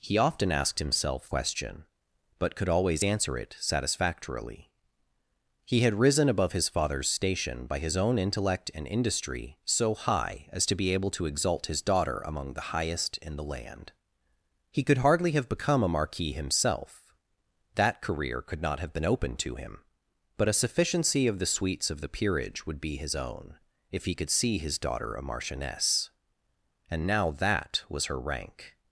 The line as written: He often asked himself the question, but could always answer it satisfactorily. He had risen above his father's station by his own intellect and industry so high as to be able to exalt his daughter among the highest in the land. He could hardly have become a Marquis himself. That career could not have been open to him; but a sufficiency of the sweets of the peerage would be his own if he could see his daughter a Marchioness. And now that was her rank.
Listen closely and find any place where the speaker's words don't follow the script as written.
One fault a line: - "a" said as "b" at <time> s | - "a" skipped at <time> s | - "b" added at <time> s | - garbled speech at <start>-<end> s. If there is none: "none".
- "the" skipped at 1.3 s